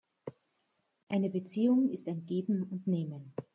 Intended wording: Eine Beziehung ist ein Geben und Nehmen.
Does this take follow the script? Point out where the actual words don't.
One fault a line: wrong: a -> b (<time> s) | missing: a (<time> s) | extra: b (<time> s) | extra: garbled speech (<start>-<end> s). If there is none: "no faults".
no faults